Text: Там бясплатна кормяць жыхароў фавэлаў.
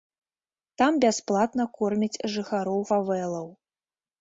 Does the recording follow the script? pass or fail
pass